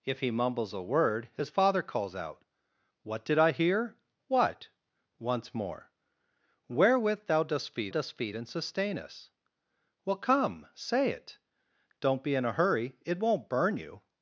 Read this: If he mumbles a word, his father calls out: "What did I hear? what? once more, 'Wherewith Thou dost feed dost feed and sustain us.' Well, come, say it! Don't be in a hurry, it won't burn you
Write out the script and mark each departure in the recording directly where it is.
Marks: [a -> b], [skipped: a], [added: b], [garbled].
If he mumbles a word, his father calls out: "What did I hear? what? once more, 'Wherewith Thou dost feed dost feed and sustain us.' Well, come, say it! Don't be in a hurry, it won't burn you